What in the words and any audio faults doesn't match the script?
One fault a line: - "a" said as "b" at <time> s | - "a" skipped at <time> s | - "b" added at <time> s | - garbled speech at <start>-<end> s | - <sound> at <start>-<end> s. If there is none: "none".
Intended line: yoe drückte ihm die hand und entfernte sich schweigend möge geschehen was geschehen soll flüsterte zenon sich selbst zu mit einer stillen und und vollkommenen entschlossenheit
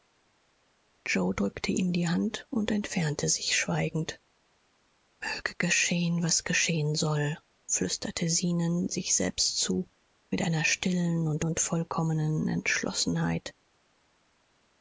none